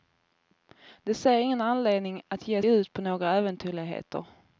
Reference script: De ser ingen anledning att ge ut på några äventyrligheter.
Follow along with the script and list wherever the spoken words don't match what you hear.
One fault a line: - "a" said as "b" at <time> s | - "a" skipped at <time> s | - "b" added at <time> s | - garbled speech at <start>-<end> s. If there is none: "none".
none